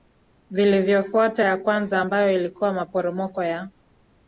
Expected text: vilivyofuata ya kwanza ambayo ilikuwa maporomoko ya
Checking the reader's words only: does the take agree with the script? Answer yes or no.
yes